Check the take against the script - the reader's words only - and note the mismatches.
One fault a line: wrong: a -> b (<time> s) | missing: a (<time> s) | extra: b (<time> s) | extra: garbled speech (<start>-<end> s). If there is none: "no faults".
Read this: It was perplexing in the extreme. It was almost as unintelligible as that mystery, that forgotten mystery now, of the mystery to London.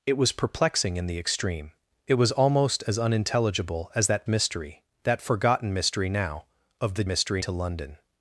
no faults